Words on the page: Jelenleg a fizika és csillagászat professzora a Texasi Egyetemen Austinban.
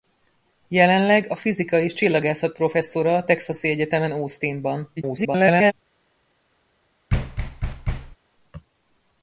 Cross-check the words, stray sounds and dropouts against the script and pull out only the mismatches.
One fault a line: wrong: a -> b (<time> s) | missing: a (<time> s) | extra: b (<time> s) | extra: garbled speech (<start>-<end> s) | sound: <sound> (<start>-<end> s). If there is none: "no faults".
extra: garbled speech (5.0-5.7 s)
sound: thud (7.1-8.2 s)